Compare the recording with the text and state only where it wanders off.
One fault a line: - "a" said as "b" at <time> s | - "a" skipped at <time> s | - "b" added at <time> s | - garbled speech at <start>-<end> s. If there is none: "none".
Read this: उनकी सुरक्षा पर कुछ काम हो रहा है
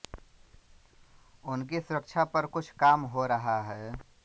none